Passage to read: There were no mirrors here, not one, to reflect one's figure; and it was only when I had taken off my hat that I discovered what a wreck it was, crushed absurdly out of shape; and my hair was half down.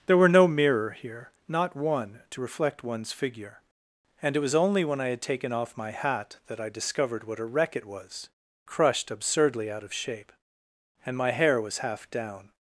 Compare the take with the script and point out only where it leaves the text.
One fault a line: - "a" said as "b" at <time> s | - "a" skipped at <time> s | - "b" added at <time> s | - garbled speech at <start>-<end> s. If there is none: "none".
- "mirrors" said as "mirror" at 0.5 s